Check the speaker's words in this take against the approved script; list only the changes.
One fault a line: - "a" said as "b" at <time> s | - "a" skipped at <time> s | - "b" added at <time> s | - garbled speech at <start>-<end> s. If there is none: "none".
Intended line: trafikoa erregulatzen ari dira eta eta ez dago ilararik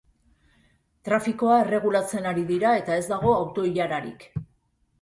- "eta" skipped at 3.0 s
- "auto" added at 3.4 s